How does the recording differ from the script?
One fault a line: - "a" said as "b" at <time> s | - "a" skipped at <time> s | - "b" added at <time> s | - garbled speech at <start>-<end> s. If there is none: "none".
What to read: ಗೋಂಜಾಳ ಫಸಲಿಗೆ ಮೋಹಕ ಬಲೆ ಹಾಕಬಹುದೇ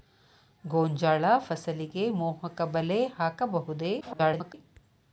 - garbled speech at 4.0-4.5 s